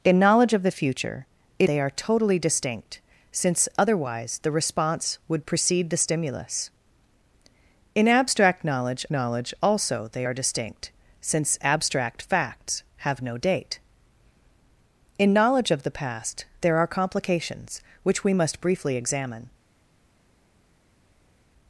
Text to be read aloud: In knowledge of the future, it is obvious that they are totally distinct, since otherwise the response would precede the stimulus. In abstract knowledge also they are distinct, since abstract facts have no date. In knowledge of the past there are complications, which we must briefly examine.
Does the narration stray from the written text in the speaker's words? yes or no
yes